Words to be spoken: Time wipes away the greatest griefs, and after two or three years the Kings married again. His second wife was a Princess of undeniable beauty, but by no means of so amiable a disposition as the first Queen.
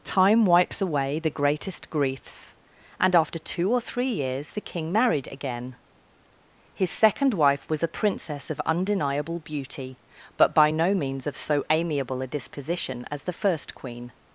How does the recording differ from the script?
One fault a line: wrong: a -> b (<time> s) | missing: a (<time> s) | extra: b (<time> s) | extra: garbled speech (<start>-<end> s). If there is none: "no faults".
wrong: Kings -> King (4.6 s)